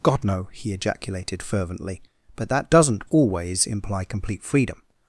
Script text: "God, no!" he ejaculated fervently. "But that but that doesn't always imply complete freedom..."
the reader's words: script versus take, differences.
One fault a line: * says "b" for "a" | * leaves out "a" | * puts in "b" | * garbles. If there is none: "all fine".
* leaves out "but that"